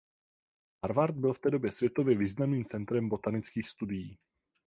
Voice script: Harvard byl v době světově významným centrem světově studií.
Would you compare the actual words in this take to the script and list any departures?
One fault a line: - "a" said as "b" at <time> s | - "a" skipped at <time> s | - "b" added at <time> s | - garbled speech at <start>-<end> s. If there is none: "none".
- "té" added at 1.4 s
- "světově" said as "botanických" at 3.1 s